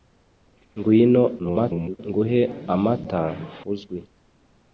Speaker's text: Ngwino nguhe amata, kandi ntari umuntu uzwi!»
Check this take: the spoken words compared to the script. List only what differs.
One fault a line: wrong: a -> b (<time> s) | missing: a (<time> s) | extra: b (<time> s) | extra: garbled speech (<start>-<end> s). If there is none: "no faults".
extra: garbled speech (1.4-2.0 s)
missing: kandi ntari umuntu (3.2 s)